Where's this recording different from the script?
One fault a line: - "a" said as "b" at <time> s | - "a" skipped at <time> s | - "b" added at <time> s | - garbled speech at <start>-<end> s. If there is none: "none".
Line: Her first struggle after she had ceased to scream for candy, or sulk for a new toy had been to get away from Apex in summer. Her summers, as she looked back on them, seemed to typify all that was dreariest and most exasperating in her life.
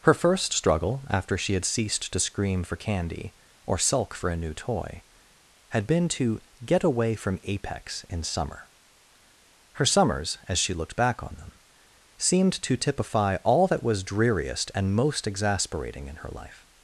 none